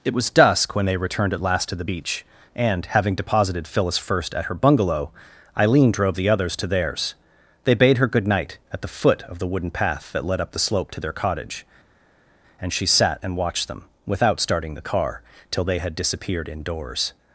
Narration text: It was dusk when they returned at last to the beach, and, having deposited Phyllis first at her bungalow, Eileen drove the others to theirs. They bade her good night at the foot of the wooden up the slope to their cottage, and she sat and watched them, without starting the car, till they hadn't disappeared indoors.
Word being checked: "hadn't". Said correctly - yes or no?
no